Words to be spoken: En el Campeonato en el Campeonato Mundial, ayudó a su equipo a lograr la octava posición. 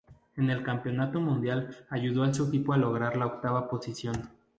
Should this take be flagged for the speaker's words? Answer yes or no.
yes